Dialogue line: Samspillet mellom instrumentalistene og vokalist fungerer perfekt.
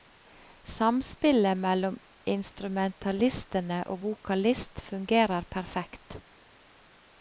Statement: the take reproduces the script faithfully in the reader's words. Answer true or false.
true